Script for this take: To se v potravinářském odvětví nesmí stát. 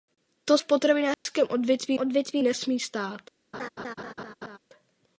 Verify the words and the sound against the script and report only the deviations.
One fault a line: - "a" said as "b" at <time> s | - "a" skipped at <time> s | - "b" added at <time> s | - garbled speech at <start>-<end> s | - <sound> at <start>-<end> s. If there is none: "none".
- "se" skipped at 0.6 s
- dropout at 1.1-1.3 s
- "odvětví" added at 2.0 s
- laugh at 3.5-4.6 s